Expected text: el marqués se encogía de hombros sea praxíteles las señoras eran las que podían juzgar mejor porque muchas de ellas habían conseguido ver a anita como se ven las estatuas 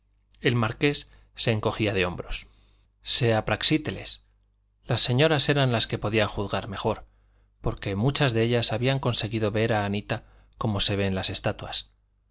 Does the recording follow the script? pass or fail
pass